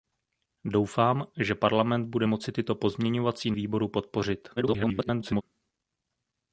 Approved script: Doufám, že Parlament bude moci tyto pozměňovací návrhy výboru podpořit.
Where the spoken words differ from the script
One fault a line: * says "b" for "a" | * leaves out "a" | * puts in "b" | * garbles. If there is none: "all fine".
* leaves out "návrhy"
* garbles